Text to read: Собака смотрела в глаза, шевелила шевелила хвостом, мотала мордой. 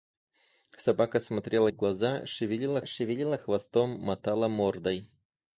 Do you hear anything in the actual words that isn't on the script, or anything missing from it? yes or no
no